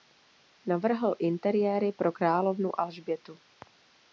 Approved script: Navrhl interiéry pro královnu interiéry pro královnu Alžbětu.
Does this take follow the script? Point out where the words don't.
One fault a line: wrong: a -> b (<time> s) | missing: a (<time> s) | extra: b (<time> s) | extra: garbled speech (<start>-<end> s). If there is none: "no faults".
missing: interiéry pro královnu (2.8 s)